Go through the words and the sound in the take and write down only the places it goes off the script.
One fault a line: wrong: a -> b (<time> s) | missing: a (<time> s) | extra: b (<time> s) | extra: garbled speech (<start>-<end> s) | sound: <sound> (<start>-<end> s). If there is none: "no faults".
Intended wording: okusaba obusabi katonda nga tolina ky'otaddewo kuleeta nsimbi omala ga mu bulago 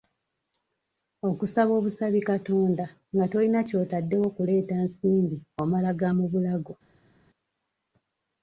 no faults